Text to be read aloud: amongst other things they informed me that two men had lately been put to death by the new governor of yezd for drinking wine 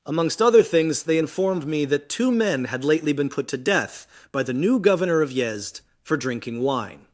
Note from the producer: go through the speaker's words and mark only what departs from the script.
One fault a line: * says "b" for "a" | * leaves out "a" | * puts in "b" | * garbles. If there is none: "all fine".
all fine